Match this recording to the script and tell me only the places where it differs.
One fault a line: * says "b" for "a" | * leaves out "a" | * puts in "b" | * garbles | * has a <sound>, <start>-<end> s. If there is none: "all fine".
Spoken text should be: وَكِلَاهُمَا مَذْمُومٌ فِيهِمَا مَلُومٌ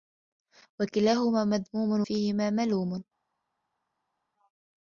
all fine